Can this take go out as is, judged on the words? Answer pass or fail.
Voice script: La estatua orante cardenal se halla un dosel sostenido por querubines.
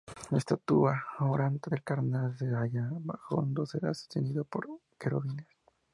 fail